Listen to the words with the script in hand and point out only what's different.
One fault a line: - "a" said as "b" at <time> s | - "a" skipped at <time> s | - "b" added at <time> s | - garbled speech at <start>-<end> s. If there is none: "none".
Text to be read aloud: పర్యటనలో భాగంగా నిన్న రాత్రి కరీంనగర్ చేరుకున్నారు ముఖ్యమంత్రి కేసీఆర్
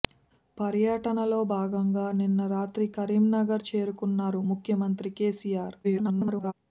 - garbled speech at 5.8-6.5 s